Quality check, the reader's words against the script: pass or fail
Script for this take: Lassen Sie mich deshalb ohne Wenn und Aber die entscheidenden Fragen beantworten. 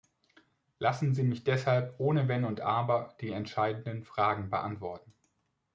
pass